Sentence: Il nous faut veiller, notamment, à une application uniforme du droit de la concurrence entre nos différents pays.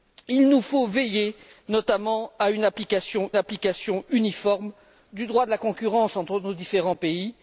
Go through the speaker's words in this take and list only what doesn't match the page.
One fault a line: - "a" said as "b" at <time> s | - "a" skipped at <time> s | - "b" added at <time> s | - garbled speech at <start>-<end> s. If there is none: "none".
- "application" added at 3.3 s